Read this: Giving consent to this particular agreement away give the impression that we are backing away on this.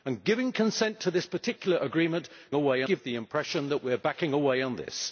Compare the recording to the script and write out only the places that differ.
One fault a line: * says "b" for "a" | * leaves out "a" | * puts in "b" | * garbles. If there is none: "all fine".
all fine